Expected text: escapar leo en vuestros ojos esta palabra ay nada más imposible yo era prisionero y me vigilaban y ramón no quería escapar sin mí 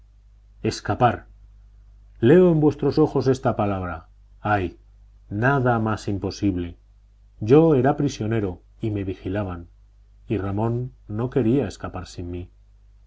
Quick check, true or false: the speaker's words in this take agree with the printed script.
true